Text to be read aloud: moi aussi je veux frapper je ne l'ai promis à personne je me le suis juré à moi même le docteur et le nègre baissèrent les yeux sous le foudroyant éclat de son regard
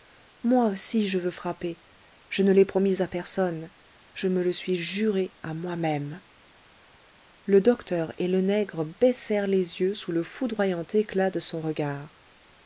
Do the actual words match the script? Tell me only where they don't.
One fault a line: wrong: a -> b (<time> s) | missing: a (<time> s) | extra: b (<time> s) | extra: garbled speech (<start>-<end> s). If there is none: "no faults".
no faults